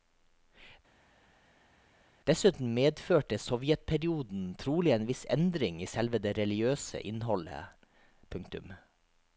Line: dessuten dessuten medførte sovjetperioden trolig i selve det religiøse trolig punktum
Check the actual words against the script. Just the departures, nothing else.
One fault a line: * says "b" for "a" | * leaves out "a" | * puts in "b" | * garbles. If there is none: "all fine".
* leaves out "dessuten"
* puts in "en viss endring"
* says "innholdet" for "trolig"